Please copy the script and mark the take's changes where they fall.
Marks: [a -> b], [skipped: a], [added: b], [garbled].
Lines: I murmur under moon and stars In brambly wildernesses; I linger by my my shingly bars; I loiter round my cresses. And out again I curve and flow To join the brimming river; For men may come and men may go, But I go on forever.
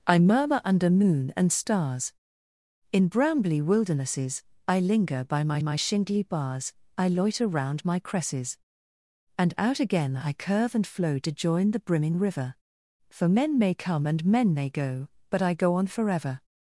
I murmur under moon and stars In brambly wildernesses; I linger by my my shingly bars; I loiter round my cresses. And out again I curve and flow To join the brimming river; For men may come and men may go, But I go on forever.